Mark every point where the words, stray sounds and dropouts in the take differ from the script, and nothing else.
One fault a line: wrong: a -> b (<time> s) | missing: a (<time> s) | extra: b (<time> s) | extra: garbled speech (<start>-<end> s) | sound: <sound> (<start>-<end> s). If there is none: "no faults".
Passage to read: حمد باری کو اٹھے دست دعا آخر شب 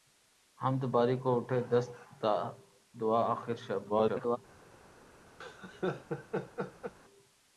extra: garbled speech (3.9-4.4 s)
sound: laugh (5.4-6.9 s)